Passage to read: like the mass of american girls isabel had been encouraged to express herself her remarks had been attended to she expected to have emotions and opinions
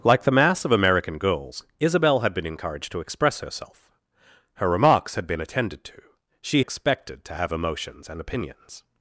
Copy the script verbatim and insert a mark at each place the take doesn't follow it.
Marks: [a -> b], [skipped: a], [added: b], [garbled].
like the mass of american girls isabel had been encouraged to express herself her remarks had been attended to she expected to have emotions and opinions